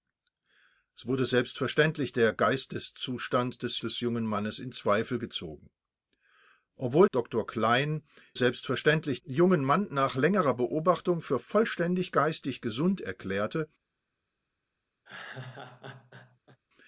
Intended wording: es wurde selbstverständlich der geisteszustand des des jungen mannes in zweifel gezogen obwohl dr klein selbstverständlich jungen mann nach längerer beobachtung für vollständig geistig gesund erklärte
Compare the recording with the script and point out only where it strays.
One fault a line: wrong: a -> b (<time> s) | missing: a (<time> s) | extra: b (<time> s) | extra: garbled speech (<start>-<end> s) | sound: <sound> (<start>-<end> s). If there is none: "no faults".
sound: laugh (15.0-16.6 s)